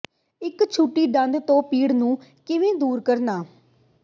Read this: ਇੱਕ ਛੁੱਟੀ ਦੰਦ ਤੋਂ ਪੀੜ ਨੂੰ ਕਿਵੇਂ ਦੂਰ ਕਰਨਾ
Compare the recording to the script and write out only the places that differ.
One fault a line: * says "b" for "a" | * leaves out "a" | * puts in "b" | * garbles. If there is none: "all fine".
all fine